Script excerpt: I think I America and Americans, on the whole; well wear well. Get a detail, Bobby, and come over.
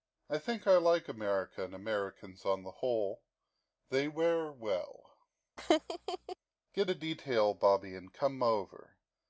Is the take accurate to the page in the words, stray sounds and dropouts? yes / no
no